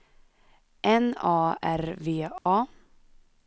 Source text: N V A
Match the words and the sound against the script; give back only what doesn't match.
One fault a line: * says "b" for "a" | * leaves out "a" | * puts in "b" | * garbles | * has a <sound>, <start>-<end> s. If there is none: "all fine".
* puts in "A R"
* has a dropout, 2.4-2.5 s